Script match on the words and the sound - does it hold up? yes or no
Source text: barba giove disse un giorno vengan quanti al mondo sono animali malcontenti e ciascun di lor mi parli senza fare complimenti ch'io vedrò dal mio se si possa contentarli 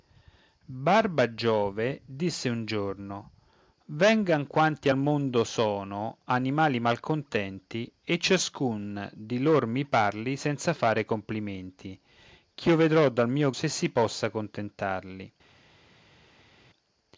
yes